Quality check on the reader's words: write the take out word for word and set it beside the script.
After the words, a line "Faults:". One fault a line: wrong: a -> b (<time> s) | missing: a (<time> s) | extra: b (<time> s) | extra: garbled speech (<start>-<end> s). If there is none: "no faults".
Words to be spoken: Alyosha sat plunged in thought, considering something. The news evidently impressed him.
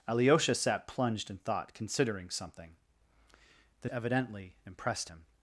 Alyosha sat plunged in thought, considering something. The evidently impressed him.
Faults:
missing: news (3.9 s)